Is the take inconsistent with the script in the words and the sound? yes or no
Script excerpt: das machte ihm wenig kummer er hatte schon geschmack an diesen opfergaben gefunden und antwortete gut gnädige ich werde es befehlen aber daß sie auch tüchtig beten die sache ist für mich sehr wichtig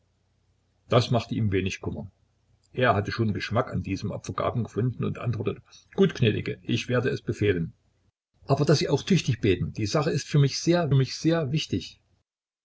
yes